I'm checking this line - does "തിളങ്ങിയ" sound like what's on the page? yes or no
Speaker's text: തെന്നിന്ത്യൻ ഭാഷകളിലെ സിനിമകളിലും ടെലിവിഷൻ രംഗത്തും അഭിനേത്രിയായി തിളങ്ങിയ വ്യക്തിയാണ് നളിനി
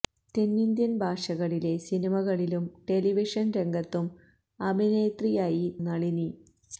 no